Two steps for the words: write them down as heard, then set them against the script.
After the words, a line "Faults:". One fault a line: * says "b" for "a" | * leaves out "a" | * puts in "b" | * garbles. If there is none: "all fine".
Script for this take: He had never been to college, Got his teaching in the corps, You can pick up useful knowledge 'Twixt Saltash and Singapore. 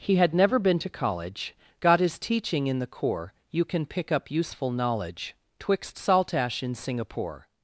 He had never been to college, Got his teaching in the corps, You can pick up useful knowledge 'Twixt Saltash in Singapore.
Faults:
* says "in" for "and"